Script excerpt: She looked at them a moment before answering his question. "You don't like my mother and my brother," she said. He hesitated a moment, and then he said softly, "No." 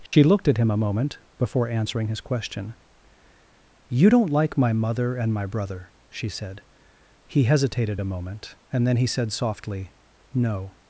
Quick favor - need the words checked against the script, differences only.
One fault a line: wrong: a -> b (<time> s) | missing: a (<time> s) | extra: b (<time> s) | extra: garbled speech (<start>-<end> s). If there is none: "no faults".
wrong: them -> him (0.6 s)